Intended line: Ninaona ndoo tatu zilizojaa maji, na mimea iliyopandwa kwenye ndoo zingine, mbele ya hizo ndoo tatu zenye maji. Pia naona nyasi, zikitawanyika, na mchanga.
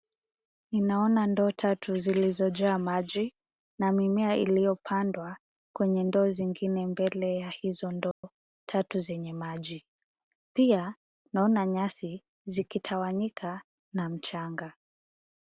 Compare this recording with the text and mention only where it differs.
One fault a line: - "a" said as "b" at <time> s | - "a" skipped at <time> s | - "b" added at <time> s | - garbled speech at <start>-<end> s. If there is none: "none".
none